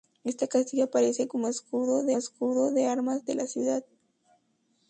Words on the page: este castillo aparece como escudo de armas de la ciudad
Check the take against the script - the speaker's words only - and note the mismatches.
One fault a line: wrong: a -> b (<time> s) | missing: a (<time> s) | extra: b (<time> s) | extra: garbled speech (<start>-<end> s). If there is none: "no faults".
extra: escudo de (2.2 s)